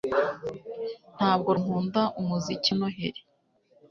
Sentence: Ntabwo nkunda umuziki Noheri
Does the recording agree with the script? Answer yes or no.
yes